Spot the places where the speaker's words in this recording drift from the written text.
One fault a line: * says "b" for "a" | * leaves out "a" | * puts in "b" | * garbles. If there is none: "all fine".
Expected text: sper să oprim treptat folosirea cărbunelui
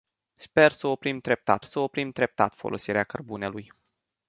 * puts in "să oprim treptat"